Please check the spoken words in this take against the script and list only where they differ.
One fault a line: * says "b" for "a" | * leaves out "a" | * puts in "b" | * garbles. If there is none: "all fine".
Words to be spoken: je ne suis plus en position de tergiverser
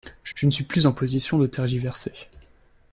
* puts in "je"